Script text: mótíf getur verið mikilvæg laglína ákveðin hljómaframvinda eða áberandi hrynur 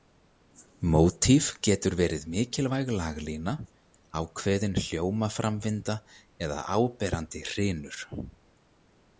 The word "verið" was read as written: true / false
true